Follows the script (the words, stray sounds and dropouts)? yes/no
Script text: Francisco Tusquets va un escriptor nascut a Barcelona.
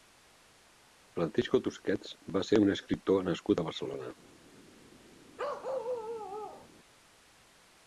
no